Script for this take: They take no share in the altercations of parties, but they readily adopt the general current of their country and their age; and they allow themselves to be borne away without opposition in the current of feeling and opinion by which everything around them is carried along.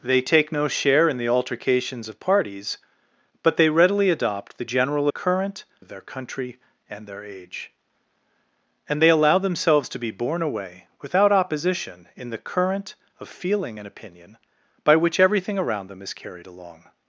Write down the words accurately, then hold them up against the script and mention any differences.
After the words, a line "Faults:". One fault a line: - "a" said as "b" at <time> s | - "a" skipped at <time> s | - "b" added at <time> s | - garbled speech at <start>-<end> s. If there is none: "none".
They take no share in the altercations of parties, but they readily adopt the general current of their country and their age; and they allow themselves to be borne away without opposition in the current of feeling and opinion by which everything around them is carried along.
Faults:
none